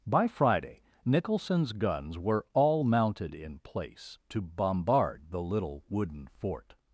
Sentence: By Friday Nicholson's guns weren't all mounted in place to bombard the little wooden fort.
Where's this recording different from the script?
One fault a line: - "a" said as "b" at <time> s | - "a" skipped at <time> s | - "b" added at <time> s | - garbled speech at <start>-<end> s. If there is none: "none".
- "weren't" said as "were" at 2.2 s